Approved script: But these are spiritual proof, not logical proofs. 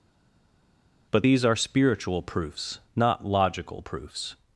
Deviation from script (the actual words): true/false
true